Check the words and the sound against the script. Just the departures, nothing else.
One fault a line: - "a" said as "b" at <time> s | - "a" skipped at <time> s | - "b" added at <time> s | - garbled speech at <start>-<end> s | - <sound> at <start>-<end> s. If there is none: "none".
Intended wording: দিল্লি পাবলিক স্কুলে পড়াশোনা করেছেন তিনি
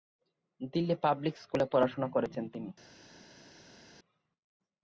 none